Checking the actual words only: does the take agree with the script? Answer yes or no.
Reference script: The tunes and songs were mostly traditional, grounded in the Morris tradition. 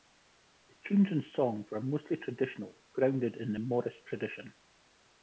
yes